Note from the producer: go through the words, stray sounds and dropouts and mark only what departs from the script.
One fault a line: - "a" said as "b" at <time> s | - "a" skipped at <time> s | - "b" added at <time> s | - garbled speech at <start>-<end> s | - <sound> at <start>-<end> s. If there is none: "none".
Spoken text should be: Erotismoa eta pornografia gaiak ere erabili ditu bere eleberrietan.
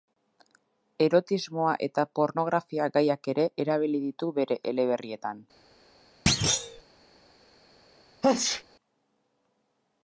- thud at 6.3-6.8 s
- sneeze at 8.2-8.6 s